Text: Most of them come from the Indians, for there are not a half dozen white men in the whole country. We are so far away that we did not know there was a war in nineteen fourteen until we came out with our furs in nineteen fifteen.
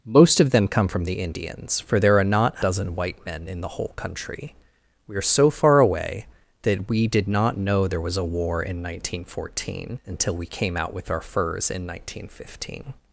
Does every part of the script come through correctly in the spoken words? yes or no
no